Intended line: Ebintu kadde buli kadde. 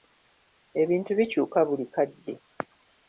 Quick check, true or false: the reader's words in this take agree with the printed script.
false